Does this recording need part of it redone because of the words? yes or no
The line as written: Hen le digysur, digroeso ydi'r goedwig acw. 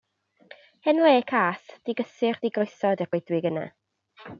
yes